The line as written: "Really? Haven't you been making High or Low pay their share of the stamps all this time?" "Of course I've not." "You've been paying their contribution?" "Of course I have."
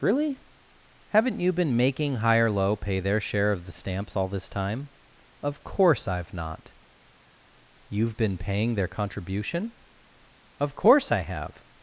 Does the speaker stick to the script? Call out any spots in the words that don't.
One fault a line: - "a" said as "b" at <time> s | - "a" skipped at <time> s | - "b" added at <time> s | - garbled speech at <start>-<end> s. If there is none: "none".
none